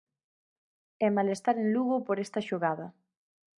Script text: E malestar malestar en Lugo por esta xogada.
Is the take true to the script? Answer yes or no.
no